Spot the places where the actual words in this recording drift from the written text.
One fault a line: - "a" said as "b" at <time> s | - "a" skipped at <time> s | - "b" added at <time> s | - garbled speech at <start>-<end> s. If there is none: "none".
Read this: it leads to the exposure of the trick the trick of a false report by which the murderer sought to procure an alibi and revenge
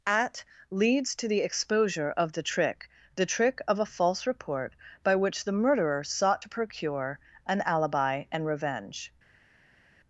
- "it" said as "at" at 0.1 s